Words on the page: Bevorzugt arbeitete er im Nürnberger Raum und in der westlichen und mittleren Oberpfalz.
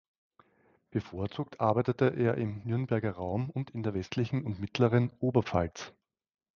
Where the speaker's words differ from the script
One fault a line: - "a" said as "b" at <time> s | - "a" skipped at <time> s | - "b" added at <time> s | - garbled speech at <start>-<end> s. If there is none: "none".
none